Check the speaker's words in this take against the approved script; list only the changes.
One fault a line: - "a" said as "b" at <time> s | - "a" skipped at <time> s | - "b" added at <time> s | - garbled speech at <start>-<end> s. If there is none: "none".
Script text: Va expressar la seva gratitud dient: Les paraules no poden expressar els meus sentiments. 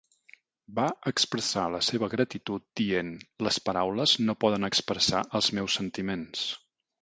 none